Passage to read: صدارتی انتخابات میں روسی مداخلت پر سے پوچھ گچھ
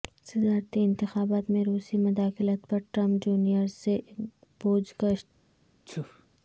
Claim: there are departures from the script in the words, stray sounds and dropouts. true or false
true